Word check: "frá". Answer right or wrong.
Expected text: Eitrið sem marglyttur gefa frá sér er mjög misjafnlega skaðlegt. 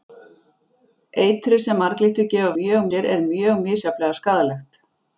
wrong